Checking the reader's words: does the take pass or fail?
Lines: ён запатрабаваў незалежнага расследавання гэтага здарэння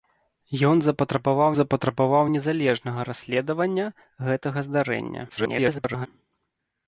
fail